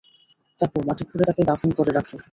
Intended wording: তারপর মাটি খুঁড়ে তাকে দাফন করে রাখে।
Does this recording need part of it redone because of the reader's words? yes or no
no